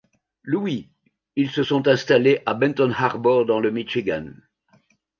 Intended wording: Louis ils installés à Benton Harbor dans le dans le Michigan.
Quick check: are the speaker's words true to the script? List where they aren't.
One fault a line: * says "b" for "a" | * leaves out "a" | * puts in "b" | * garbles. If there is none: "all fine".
* puts in "se sont"
* leaves out "dans le"